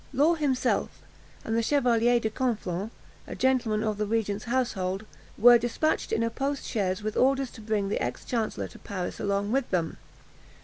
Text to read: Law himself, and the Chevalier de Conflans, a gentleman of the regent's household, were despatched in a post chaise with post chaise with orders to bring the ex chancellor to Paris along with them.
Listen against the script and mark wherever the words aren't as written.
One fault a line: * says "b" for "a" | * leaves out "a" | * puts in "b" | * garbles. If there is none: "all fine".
* leaves out "post chaise with"